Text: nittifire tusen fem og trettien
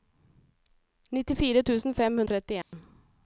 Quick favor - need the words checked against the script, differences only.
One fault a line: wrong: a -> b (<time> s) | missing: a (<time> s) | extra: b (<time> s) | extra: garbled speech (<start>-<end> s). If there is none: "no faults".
no faults